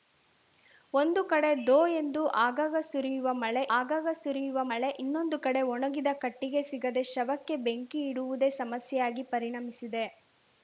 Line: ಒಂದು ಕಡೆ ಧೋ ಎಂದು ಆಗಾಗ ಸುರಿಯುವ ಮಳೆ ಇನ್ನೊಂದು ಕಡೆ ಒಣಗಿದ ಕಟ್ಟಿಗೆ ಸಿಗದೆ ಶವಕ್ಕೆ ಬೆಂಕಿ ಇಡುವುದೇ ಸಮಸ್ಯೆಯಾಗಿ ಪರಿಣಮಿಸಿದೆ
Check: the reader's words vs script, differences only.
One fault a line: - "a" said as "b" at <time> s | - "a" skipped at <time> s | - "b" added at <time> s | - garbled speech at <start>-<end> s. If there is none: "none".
- "ಆಗಾಗ ಸುರಿಯುವ ಮಳೆ" added at 3.8 s